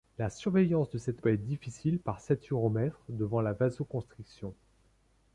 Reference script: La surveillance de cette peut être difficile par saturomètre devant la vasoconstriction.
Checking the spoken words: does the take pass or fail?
pass